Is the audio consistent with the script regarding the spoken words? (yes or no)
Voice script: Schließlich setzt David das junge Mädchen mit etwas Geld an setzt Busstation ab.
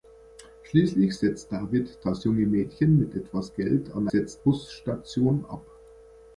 yes